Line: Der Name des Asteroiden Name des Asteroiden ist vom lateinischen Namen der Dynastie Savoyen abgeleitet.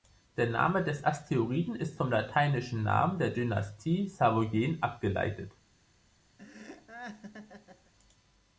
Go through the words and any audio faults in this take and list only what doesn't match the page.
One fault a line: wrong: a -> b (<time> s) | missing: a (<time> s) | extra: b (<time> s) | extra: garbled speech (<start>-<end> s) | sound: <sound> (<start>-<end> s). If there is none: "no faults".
missing: Name des Asteroiden (1.8 s)
sound: laugh (6.4-7.9 s)